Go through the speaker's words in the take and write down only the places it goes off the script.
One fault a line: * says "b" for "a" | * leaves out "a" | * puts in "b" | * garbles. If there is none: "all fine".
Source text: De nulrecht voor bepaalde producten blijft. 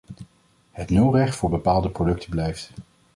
* says "Het" for "De"